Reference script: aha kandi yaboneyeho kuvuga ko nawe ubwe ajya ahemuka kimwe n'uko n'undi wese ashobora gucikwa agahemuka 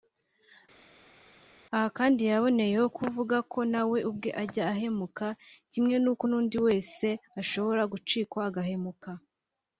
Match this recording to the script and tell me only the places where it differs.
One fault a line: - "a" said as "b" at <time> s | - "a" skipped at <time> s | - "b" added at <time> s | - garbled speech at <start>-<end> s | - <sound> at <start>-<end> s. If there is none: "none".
none